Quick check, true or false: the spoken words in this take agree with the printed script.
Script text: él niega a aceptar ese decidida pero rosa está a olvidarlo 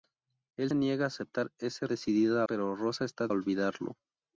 true